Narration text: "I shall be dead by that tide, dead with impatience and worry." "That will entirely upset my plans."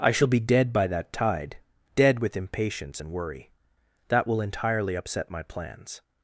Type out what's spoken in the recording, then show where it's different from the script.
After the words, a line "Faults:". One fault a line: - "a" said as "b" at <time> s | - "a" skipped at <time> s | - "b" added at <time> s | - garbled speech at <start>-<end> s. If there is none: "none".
"I shall be dead by that tide, dead with impatience and worry." "That will entirely upset my plans."
Faults:
none